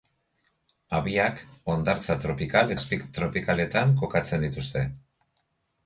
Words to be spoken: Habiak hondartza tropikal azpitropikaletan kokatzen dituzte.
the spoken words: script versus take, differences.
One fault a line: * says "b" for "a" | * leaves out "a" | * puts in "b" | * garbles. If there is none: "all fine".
all fine